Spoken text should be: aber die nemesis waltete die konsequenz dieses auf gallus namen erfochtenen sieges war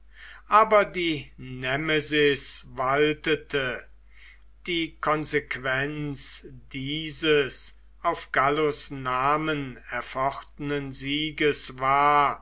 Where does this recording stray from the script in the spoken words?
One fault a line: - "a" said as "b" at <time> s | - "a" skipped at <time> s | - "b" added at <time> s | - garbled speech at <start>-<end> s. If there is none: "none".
none